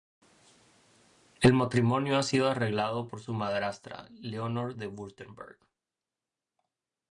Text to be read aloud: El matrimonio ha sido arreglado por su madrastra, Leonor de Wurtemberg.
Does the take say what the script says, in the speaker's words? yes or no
yes